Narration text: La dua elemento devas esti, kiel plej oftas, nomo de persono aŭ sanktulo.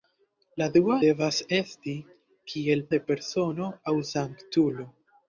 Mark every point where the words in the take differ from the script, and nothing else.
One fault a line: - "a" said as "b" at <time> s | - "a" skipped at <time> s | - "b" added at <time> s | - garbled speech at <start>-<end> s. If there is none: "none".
- "elemento" skipped at 0.9 s
- "plej oftas nomo" skipped at 2.9 s